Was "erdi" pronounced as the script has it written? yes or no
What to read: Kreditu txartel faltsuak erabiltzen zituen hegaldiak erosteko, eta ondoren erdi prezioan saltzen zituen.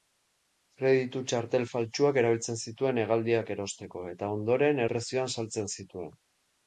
no